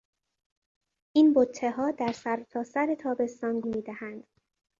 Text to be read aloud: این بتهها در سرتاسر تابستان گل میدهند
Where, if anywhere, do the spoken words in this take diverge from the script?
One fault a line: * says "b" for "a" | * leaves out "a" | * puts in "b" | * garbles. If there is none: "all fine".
* leaves out "گل"